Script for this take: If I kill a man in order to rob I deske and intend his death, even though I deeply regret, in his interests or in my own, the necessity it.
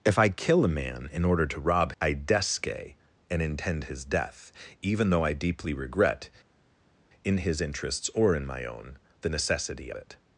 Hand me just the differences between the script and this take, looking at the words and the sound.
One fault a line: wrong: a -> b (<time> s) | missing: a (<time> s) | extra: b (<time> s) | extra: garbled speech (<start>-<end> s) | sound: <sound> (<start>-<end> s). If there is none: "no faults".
no faults